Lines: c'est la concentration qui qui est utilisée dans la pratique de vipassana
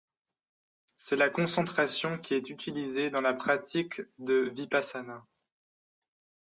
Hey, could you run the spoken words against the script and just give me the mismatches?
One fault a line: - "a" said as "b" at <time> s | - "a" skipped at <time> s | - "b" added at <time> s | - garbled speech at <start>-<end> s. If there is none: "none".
- "qui" skipped at 2.3 s